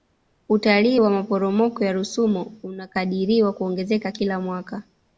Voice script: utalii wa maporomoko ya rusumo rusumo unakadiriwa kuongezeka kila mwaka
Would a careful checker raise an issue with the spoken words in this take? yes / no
yes